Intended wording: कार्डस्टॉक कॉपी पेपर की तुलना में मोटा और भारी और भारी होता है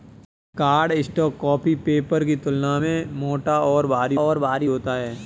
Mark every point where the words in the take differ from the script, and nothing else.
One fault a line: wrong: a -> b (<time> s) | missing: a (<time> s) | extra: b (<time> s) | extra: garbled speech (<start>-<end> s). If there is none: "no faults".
no faults